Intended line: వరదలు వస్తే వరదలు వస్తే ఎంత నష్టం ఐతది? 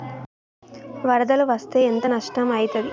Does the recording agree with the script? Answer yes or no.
no